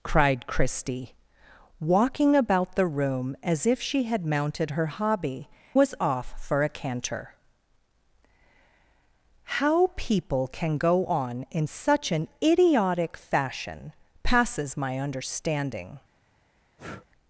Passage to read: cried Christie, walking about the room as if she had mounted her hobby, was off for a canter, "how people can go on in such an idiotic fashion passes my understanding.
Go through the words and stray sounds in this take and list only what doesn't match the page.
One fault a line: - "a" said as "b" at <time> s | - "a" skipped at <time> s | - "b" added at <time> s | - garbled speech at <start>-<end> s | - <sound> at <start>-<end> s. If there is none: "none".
- breath at 16.8-17.1 s